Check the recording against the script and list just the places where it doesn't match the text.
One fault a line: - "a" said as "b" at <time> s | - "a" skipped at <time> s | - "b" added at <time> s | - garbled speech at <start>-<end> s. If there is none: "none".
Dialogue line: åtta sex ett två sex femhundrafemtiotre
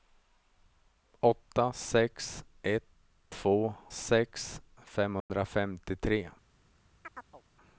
none